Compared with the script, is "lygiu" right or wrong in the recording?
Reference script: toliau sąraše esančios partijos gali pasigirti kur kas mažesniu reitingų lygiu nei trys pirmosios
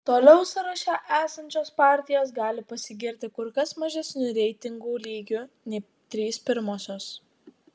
right